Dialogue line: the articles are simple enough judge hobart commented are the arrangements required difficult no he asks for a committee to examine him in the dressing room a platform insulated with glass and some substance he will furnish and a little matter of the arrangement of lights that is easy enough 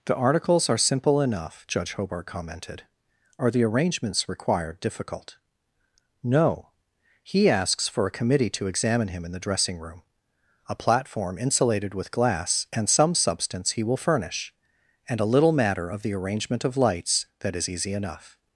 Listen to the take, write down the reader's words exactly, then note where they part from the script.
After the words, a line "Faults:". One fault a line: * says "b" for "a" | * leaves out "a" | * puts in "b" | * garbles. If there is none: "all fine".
the articles are simple enough judge hobart commented are the arrangements required difficult no he asks for a committee to examine him in the dressing room a platform insulated with glass and some substance he will furnish and a little matter of the arrangement of lights that is easy enough
Faults:
all fine